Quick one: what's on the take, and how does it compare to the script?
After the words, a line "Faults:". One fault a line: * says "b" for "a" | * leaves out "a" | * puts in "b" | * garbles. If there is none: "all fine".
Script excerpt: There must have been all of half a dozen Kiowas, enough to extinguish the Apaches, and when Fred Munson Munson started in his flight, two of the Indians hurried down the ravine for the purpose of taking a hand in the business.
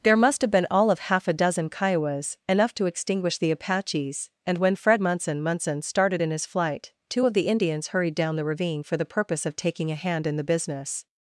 There must have been all of half a dozen Kiowas, enough to extinguish the Apaches, and when Fred Munson Munson started in his flight, two of the Indians hurried down the ravine for the purpose of taking a hand in the business.
Faults:
all fine